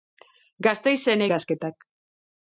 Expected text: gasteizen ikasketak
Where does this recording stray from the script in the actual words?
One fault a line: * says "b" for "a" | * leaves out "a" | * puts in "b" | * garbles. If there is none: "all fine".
all fine